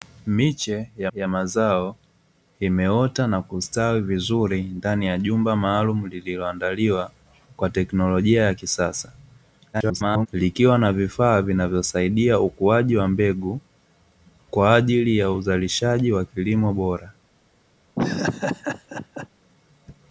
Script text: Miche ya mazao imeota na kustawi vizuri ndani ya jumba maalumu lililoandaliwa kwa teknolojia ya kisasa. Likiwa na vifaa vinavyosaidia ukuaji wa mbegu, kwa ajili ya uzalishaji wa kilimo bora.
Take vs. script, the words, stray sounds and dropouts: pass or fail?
fail